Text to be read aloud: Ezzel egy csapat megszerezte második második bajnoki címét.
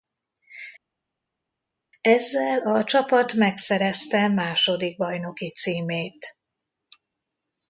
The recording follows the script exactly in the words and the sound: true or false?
false